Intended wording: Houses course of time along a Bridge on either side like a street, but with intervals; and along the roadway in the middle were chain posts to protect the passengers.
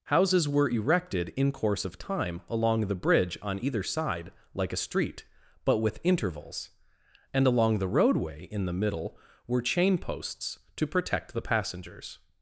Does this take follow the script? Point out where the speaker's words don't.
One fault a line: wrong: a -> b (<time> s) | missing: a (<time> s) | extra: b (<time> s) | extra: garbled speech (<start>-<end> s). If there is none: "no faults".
extra: were erected in (0.5 s)
wrong: a -> the (2.8 s)